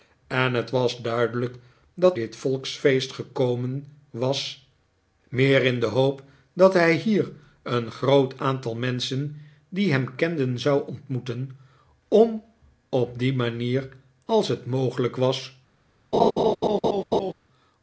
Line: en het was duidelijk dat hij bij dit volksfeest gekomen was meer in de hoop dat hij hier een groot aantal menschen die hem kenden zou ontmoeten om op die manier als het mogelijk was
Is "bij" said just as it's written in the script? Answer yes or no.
no